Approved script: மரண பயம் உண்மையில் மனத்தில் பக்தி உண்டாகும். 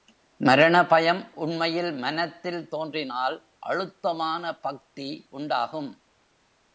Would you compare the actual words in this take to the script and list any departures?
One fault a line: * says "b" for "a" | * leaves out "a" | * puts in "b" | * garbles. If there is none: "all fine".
* puts in "தோன்றினால் அழுத்தமான"